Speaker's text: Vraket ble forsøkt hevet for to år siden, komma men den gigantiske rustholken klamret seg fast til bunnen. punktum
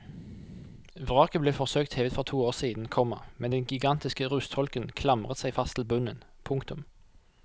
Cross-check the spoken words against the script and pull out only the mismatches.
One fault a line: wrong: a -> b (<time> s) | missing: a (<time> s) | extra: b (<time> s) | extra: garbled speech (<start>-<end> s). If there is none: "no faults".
no faults